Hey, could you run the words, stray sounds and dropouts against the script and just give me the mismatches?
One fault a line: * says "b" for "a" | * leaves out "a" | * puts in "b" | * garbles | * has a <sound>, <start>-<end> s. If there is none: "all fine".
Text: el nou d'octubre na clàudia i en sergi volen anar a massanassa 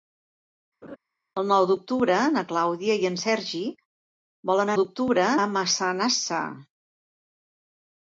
* has a laugh, 0.8-1.0 s
* says "d'octubre" for "anar"